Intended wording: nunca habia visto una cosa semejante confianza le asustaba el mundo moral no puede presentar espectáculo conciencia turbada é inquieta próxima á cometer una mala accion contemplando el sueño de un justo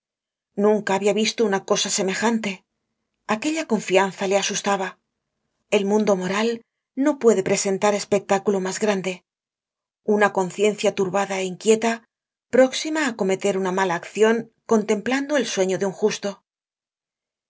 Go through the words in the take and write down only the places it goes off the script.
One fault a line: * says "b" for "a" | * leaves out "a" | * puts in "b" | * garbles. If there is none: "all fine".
* puts in "aquella"
* puts in "mas grande una"